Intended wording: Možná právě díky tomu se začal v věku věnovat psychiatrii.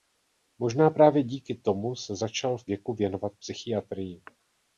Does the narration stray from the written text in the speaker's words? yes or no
no